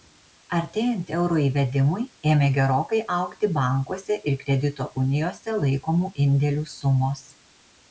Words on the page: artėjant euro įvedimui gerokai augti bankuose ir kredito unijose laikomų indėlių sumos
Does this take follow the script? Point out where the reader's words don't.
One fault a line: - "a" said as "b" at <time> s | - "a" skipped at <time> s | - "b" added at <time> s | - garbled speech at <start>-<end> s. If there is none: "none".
- "ėmė" added at 2.3 s